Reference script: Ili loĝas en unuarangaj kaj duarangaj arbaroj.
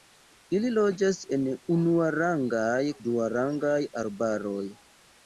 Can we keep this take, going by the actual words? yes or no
no